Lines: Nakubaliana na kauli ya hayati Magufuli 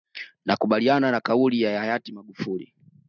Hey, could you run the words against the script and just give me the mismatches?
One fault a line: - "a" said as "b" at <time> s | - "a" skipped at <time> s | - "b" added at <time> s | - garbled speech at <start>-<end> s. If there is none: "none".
none